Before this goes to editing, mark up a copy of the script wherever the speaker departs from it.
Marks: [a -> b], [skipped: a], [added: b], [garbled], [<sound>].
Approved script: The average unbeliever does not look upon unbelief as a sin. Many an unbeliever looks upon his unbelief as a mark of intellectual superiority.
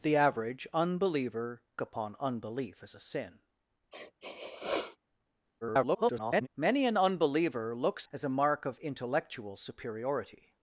The average unbeliever [skipped: does not look] upon unbelief as a sin. [sniff] [garbled] Many an unbeliever looks [skipped: upon his unbelief] as a mark of intellectual superiority.